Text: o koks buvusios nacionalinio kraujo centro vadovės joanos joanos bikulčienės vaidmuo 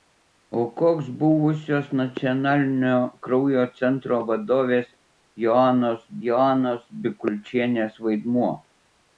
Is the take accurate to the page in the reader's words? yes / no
yes